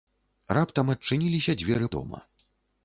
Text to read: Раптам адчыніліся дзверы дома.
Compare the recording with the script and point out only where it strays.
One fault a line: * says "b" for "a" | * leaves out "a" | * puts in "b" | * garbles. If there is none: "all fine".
all fine